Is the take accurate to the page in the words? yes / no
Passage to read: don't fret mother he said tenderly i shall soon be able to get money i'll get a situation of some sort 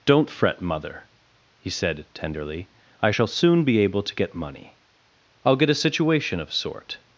no